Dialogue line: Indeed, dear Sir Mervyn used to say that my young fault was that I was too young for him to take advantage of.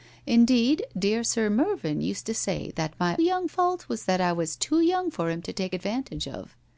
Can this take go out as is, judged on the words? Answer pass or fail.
pass